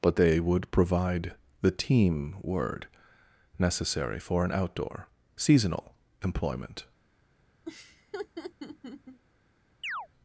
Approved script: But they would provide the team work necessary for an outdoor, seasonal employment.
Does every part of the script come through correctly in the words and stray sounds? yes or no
no